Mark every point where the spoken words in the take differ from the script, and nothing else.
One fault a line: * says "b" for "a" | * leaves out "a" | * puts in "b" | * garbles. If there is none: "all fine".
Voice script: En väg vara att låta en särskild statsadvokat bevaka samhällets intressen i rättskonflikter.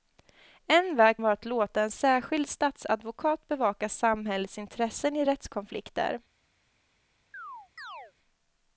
all fine